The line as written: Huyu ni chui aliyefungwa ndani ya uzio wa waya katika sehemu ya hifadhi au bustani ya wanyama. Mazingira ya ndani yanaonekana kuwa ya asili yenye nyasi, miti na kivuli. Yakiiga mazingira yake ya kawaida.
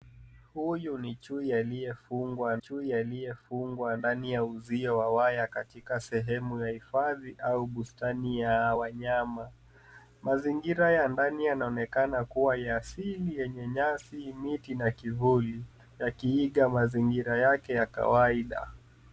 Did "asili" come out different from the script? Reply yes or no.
no